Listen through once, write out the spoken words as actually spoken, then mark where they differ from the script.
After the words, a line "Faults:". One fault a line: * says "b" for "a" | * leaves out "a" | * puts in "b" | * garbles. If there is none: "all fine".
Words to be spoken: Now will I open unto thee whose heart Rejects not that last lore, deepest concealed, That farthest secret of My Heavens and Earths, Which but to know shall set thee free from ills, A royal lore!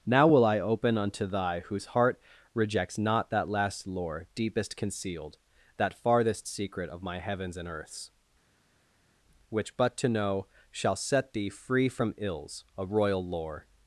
Now will I open unto thy whose heart Rejects not that last lore, deepest concealed, That farthest secret of My Heavens and Earths, Which but to know shall set thee free from ills, A royal lore!
Faults:
* says "thy" for "thee"